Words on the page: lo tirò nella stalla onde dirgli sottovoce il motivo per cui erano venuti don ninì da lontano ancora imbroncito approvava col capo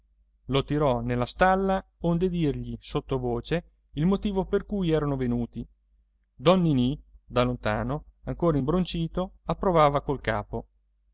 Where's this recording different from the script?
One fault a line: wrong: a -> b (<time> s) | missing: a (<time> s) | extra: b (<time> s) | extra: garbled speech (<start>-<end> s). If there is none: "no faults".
no faults